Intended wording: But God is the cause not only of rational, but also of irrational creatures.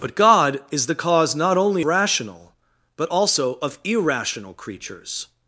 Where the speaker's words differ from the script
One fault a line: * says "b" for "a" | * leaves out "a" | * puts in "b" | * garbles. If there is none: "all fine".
* leaves out "of"